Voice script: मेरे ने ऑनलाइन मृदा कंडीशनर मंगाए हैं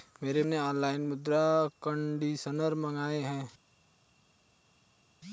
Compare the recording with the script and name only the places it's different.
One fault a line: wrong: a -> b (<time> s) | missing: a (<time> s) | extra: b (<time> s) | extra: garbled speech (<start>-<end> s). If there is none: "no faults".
no faults